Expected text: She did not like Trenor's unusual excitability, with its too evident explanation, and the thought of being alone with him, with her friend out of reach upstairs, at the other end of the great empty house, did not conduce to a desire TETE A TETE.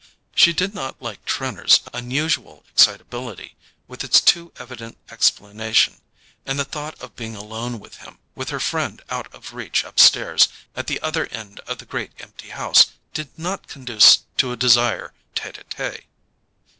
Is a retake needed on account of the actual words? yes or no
no